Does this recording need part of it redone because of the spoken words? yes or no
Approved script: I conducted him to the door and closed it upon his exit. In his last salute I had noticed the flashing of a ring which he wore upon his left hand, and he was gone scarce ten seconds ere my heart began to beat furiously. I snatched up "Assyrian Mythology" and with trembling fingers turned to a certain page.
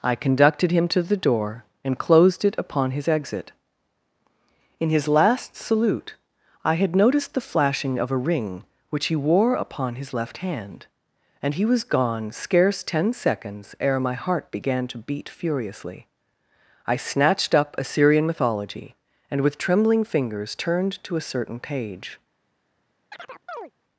no